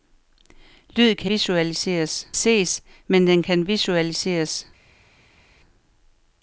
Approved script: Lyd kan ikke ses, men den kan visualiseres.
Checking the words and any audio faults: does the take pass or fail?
fail